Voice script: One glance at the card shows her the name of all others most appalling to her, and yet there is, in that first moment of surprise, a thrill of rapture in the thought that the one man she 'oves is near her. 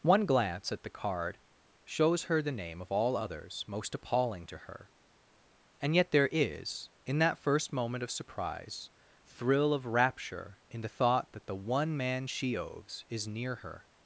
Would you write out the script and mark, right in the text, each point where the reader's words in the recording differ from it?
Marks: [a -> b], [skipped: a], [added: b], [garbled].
One glance at the card shows her the name of all others most appalling to her, and yet there is, in that first moment of surprise, [skipped: a] thrill of rapture in the thought that the one man she 'oves is near her.